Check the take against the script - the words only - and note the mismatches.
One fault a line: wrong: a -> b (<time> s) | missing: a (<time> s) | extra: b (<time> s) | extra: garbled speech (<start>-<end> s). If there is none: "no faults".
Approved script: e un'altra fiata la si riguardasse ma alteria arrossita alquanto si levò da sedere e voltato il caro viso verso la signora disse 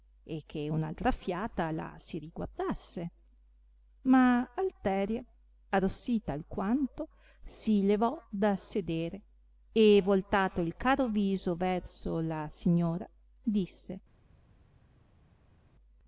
extra: che (0.5 s)